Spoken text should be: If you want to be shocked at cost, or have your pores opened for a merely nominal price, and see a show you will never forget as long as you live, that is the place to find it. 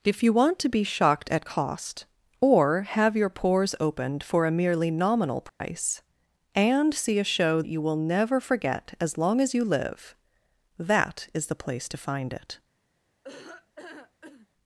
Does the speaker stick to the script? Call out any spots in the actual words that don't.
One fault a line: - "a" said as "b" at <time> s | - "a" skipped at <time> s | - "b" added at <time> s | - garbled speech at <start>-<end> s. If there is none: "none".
none